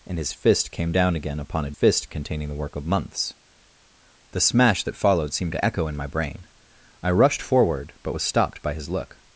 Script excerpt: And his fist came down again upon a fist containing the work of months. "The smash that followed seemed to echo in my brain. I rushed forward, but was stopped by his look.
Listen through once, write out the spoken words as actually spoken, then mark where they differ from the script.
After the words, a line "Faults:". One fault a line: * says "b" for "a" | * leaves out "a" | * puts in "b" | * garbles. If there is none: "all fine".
And his fist came down again upon a fist containing the work of months. "The smash that followed seemed to echo in my brain. I rushed forward, but was stopped by his look.
Faults:
all fine